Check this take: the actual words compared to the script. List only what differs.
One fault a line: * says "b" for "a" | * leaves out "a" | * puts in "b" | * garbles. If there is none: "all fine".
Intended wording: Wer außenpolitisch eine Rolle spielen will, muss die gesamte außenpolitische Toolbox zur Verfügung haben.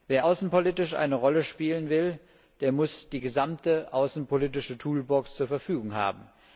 * puts in "der"